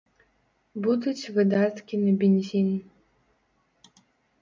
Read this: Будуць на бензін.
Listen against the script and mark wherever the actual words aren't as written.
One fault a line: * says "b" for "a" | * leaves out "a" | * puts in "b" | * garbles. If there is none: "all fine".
* puts in "выдаткі"